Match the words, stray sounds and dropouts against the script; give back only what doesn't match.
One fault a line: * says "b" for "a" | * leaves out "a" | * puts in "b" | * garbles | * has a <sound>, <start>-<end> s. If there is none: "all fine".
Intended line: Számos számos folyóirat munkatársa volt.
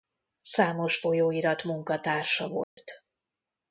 * leaves out "számos"
* has a dropout, 2.6-2.8 s